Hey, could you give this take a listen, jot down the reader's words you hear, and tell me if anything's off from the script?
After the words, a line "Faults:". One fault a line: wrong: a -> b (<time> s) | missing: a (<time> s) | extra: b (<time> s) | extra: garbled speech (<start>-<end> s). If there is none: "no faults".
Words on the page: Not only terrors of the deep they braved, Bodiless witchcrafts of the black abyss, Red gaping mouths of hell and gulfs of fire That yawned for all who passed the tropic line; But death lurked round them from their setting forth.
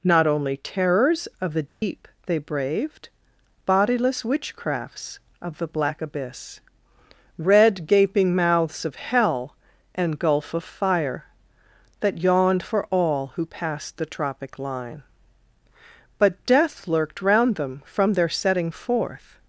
Not only terrors of the deep they braved, Bodiless witchcrafts of the black abyss, Red gaping mouths of hell and gulf of fire That yawned for all who passed the tropic line; But death lurked round them from their setting forth.
Faults:
wrong: gulfs -> gulf (10.2 s)